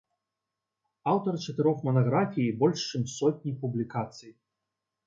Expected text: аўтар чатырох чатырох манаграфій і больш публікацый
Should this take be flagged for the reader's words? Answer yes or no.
yes